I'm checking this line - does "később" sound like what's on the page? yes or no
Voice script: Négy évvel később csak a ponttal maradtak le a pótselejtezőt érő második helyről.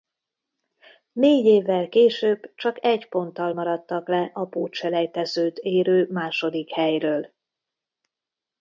yes